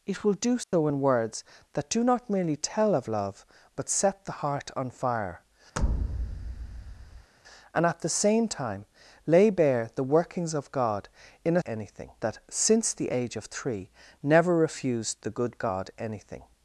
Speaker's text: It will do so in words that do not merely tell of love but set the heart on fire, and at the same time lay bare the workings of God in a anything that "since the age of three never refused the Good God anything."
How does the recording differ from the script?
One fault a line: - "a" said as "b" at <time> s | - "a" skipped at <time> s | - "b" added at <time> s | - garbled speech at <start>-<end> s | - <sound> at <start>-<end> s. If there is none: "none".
- dropout at 0.6-0.7 s
- thud at 5.8-7.3 s